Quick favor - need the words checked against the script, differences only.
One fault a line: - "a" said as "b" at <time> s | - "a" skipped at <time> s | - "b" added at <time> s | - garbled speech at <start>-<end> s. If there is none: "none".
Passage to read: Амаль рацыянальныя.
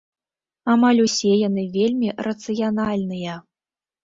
- "усе яны вельмі" added at 1.0 s